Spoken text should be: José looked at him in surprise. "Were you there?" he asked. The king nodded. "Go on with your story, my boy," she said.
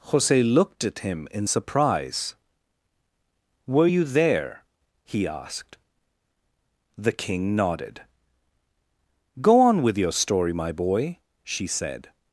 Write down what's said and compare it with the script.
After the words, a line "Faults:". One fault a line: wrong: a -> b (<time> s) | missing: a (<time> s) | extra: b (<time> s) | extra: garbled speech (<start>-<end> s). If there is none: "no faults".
José looked at him in surprise. "Were you there?" he asked. The king nodded. "Go on with your story, my boy," she said.
Faults:
no faults